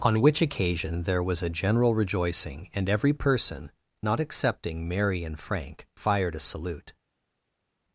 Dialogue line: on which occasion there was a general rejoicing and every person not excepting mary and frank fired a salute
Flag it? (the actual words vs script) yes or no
no